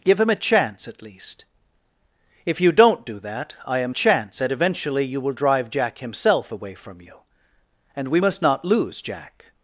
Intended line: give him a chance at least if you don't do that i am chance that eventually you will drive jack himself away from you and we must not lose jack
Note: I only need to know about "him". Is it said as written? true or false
true